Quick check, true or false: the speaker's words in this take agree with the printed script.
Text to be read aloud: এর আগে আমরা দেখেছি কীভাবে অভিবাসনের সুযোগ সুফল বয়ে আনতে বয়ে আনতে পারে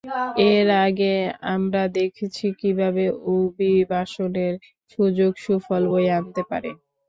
false